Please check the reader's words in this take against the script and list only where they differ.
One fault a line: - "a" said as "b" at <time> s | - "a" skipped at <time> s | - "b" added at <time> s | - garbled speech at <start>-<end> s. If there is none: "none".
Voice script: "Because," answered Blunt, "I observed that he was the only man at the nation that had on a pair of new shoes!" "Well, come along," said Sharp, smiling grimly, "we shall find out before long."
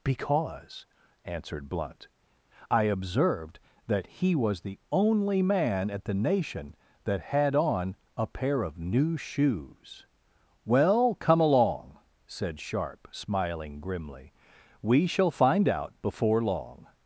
none